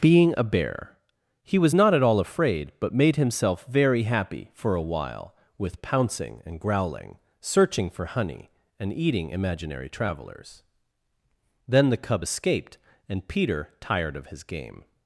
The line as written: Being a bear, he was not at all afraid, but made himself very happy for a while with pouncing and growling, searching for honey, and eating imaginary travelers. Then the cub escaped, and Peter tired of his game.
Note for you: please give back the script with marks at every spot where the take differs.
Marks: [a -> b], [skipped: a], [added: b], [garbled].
Being a bear, he was not at all afraid, but made himself very happy for a while with pouncing and growling, searching for honey, and eating imaginary travelers. Then the cub escaped, and Peter tired of his game.